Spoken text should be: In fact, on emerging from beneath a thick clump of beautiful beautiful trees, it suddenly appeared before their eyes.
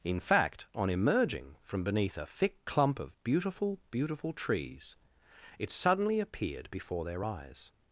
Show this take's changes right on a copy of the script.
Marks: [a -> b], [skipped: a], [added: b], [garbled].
In fact, on emerging from beneath a thick clump of beautiful beautiful trees, it suddenly appeared before their eyes.